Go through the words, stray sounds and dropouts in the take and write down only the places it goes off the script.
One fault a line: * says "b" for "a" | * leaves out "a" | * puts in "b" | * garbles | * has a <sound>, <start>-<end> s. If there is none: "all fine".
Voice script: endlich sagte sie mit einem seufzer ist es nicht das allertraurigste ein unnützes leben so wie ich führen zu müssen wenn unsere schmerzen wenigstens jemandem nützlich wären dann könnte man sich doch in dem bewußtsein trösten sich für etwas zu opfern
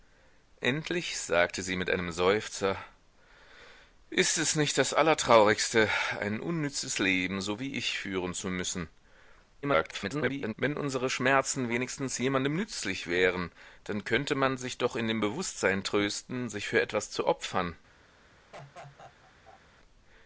* garbles
* has a laugh, 18.5-19.6 s